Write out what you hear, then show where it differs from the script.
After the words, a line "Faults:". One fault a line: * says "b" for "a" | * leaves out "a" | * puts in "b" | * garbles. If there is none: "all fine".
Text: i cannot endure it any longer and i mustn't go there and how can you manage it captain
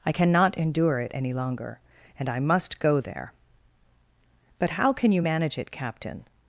i cannot endure it any longer and i must go there but how can you manage it captain
Faults:
* says "must" for "mustn't"
* says "but" for "and"